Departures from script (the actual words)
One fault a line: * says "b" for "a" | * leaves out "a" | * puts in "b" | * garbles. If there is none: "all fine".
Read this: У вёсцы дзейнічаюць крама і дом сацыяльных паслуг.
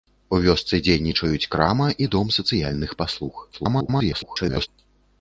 * garbles